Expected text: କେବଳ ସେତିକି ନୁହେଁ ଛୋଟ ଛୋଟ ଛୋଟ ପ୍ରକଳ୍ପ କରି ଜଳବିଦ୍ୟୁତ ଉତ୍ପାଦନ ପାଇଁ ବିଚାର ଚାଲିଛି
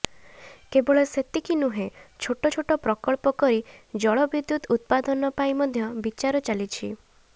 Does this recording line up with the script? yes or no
no